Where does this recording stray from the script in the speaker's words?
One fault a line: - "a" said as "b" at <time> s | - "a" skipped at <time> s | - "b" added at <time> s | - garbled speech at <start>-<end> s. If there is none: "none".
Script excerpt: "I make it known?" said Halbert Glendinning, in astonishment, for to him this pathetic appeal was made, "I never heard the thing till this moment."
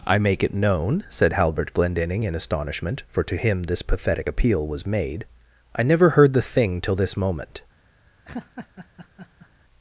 none